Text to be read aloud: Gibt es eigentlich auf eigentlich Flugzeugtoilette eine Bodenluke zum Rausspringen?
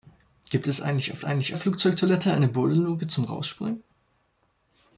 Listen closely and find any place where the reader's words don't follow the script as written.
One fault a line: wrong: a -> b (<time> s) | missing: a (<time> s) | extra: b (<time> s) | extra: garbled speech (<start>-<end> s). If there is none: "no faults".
no faults